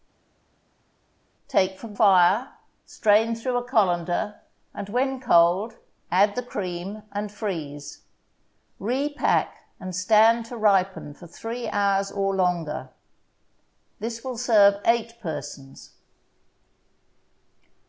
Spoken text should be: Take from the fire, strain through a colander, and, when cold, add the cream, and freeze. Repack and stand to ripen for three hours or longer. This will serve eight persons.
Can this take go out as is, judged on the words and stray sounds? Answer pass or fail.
fail